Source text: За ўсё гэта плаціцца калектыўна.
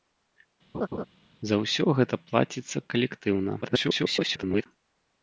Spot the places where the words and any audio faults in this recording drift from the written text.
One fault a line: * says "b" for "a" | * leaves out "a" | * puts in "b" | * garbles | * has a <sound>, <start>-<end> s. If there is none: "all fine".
* has a laugh, 0.7-1.1 s
* garbles